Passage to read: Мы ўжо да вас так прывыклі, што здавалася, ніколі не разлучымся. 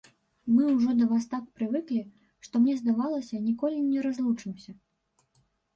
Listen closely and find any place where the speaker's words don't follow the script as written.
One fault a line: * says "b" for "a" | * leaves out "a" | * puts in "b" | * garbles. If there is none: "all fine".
* puts in "мне"